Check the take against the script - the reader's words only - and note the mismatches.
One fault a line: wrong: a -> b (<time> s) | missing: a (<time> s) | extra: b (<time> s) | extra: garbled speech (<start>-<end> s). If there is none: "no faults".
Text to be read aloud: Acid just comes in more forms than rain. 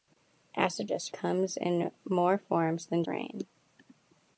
no faults